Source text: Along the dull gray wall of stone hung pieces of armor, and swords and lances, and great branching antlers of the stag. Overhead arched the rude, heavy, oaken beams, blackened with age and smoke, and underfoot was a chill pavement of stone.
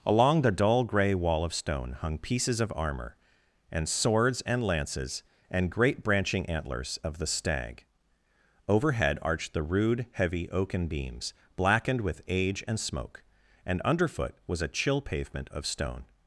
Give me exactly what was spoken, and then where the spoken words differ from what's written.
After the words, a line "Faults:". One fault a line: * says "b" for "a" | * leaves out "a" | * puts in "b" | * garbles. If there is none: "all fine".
Along the dull gray wall of stone hung pieces of armor, and swords and lances, and great branching antlers of the stag. Overhead arched the rude, heavy, oaken beams, blackened with age and smoke, and underfoot was a chill pavement of stone.
Faults:
all fine